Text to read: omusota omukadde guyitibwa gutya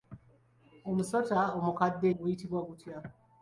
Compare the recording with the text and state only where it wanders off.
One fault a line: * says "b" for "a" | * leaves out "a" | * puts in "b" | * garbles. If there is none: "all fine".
all fine